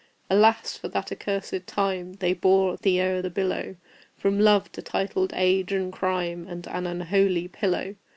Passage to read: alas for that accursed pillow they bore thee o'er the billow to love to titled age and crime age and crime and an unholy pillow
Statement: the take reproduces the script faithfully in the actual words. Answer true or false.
false